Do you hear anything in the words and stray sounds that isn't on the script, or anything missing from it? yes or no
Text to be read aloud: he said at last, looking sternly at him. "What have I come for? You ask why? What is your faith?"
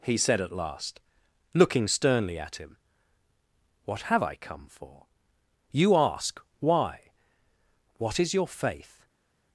no